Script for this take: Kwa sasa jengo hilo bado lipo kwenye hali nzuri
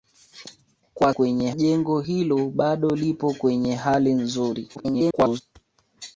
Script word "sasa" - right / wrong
wrong